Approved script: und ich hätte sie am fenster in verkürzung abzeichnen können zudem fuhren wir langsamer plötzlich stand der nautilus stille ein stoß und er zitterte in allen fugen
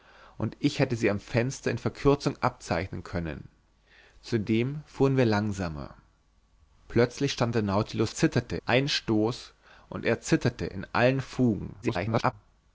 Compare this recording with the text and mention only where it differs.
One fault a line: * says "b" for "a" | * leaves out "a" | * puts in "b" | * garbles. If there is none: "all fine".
* says "zitterte" for "stille"
* garbles